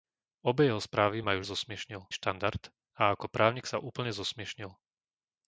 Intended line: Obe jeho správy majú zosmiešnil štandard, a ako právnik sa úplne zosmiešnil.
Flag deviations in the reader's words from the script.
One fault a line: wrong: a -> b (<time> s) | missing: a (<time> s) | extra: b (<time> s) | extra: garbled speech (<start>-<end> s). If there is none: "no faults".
no faults